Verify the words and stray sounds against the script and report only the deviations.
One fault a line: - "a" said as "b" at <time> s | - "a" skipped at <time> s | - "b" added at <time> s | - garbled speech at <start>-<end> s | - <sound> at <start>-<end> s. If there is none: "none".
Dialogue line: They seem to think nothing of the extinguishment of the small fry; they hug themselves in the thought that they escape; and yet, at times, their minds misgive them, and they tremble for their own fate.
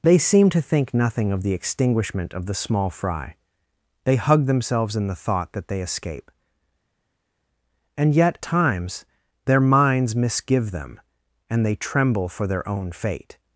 - "at" skipped at 8.4 s